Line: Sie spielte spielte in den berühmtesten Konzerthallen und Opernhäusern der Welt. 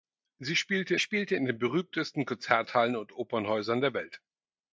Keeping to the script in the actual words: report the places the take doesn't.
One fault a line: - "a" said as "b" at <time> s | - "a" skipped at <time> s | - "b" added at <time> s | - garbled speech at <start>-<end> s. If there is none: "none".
none